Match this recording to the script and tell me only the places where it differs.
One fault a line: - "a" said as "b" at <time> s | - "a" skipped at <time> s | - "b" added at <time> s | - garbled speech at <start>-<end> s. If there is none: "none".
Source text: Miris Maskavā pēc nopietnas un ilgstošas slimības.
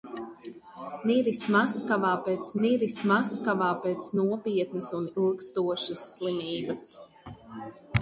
- "miris Maskavā pēc" added at 2.6 s